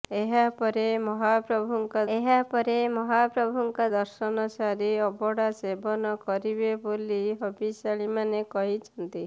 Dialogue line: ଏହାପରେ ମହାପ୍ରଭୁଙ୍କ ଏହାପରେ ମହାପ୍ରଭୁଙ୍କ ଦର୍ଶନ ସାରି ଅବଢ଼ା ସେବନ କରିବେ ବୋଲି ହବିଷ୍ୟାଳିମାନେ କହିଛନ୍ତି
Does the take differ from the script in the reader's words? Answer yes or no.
no